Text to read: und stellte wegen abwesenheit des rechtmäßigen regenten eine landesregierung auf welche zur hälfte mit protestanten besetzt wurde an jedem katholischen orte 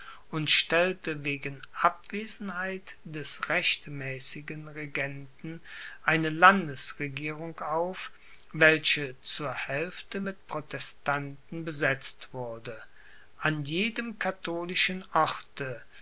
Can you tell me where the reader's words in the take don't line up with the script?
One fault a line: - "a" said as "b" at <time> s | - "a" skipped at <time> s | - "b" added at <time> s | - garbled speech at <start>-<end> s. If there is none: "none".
none